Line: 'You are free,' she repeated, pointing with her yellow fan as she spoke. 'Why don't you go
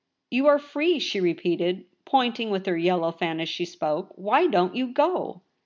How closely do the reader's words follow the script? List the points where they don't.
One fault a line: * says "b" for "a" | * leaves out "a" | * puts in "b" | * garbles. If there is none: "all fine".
all fine